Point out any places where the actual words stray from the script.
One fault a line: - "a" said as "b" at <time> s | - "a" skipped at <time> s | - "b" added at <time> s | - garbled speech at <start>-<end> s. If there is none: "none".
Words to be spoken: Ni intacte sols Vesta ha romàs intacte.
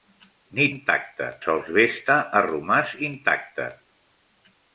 none